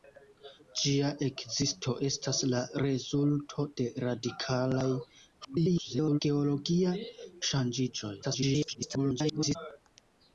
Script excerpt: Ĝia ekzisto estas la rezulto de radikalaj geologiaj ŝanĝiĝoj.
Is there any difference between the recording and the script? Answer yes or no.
yes